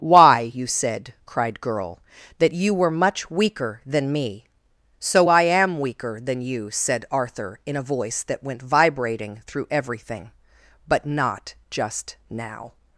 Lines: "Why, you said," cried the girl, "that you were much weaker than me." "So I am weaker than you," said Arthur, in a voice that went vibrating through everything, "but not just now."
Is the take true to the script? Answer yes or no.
no